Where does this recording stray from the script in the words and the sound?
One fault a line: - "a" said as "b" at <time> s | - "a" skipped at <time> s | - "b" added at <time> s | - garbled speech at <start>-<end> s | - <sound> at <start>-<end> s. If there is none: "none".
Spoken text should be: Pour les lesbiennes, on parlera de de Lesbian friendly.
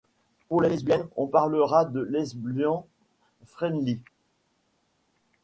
- "de" skipped at 2.0 s